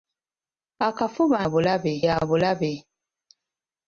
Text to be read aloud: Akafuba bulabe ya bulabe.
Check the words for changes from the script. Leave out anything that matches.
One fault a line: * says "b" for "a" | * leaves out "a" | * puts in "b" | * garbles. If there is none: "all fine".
all fine